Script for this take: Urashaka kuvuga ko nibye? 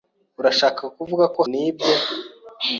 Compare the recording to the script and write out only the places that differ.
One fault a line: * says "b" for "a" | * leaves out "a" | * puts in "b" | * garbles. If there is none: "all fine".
all fine